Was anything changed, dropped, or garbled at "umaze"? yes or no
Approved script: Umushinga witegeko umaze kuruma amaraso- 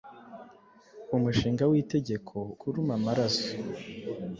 yes